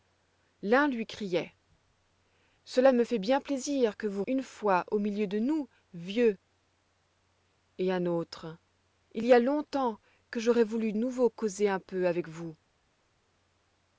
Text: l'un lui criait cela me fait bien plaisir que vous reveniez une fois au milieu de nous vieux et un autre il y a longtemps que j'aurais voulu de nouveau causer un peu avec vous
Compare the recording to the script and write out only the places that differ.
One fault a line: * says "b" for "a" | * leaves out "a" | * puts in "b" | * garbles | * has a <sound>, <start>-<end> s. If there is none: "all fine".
* leaves out "reveniez"
* leaves out "de"